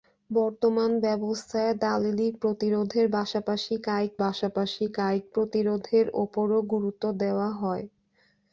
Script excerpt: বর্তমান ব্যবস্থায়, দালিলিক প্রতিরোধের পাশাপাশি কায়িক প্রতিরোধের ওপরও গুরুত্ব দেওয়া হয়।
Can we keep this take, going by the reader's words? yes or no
no